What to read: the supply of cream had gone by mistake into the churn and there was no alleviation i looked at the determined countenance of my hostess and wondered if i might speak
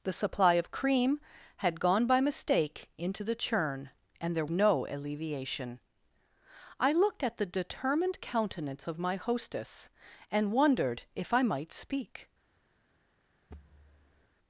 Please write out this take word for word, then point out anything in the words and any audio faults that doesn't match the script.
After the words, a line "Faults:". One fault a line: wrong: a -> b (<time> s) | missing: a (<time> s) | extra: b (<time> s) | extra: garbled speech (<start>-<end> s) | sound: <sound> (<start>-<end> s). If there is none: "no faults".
the supply of cream had gone by mistake into the churn and there no alleviation i looked at the determined countenance of my hostess and wondered if i might speak
Faults:
missing: was (4.5 s)
sound: thud (13.5-14.3 s)